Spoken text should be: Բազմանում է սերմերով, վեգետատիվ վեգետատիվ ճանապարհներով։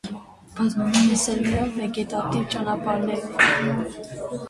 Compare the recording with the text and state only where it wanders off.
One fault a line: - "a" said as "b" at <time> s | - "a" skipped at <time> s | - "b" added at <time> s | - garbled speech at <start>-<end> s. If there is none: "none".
- "վեգետատիվ" skipped at 2.5 s